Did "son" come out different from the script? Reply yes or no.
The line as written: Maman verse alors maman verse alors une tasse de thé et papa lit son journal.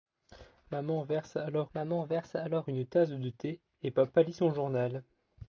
no